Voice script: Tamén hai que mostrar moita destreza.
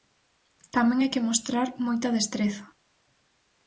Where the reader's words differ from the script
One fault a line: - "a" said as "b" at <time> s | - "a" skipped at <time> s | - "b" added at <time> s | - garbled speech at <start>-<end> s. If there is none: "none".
none